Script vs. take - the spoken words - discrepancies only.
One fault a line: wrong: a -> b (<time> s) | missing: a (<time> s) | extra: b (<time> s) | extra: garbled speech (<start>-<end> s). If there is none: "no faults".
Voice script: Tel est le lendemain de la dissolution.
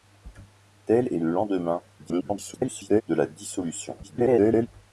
extra: garbled speech (2.0-3.0 s)
extra: garbled speech (4.0-4.7 s)